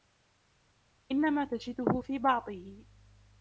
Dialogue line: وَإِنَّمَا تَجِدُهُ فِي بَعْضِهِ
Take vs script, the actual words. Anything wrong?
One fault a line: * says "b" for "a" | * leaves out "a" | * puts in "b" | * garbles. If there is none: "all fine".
all fine